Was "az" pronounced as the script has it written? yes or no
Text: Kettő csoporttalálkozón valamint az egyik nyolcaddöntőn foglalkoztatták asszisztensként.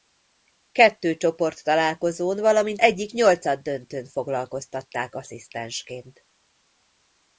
no